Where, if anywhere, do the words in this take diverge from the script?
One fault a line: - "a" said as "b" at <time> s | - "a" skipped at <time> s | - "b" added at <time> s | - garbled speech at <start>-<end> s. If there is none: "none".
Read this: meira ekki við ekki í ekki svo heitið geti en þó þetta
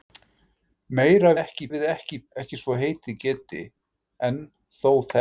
none